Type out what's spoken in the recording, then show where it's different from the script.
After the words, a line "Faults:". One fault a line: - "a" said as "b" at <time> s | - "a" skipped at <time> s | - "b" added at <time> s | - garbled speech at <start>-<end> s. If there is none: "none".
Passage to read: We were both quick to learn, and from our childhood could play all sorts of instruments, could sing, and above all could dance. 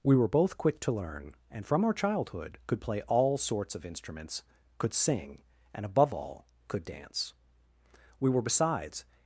We were both quick to learn, and from our childhood could play all sorts of instruments, could sing, and above all could dance. We were besides
Faults:
- "We were besides" added at 8.2 s